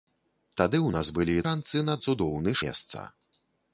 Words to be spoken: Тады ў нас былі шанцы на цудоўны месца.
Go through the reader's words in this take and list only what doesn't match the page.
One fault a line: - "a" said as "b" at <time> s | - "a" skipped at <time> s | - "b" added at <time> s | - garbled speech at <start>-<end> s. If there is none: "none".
none